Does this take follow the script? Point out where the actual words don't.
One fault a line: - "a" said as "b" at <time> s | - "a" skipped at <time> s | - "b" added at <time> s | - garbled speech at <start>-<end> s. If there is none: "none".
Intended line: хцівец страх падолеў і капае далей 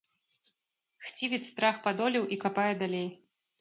none